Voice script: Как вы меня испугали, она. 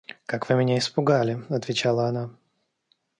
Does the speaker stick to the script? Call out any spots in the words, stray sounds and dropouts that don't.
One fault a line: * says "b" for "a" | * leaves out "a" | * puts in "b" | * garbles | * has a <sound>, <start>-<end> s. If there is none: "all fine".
* puts in "отвечала"